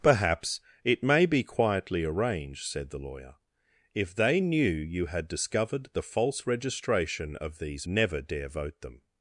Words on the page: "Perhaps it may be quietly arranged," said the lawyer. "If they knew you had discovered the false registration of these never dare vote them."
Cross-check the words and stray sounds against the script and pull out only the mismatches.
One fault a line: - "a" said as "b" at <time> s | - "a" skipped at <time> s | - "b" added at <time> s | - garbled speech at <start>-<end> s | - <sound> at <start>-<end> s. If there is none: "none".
none